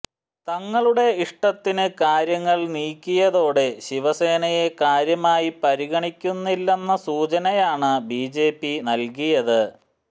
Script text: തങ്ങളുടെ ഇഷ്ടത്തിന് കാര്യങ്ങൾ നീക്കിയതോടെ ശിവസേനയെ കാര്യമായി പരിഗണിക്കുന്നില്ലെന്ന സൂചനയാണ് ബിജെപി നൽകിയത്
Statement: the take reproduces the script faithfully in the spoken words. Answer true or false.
true